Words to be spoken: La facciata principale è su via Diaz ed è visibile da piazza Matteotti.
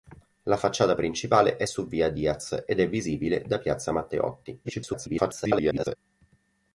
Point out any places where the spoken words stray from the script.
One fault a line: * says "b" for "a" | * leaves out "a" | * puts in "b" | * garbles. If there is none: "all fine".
* garbles